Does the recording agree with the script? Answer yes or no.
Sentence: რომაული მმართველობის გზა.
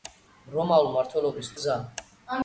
yes